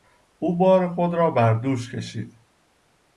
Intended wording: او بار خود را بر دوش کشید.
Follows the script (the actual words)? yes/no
yes